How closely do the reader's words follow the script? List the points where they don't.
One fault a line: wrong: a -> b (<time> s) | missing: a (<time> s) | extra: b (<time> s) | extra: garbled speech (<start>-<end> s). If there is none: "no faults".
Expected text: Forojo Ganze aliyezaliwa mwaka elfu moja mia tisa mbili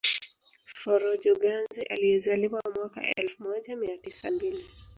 no faults